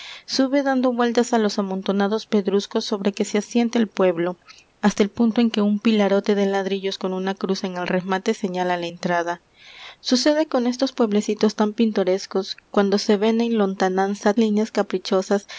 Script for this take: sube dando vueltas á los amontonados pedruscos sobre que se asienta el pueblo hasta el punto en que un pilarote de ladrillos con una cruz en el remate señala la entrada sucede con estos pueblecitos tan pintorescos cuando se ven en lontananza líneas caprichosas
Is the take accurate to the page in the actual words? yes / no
yes